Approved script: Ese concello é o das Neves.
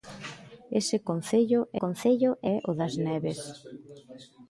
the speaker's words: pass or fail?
fail